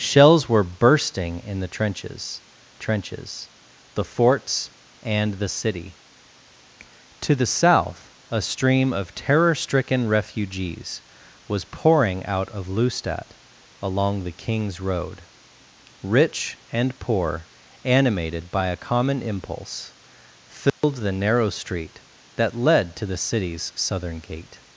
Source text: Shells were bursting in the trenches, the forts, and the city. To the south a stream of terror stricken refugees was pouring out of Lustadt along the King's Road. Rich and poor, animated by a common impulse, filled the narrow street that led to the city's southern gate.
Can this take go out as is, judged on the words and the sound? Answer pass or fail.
fail